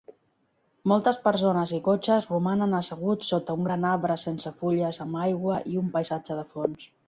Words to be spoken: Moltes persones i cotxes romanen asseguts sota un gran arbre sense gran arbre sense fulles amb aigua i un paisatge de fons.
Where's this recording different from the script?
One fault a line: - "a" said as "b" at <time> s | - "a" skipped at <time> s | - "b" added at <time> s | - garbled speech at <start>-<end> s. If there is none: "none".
- "gran arbre sense" skipped at 4.5 s